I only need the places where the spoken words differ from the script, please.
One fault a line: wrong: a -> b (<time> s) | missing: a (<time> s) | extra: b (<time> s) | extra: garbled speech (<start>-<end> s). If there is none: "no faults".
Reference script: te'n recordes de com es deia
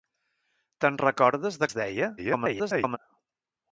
missing: com (1.7 s)
extra: garbled speech (2.2-3.0 s)